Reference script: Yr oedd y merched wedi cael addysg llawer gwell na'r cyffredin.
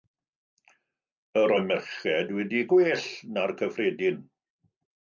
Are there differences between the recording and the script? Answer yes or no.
yes